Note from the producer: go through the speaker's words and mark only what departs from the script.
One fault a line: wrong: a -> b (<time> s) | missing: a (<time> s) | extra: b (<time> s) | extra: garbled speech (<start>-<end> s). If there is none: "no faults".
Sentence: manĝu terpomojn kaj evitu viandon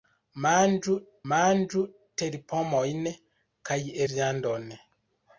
extra: manĝu (1.3 s)
missing: evitu (3.8 s)